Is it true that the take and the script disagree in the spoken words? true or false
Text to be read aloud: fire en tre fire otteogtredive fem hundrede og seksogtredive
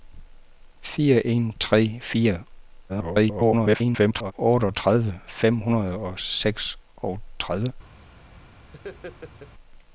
true